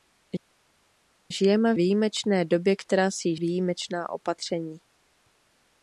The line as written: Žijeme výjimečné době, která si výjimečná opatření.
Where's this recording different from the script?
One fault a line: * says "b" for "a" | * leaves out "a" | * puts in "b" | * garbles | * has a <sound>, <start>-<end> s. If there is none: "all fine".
all fine